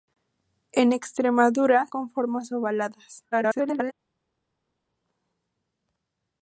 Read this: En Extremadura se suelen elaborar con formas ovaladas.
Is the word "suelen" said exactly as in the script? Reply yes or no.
no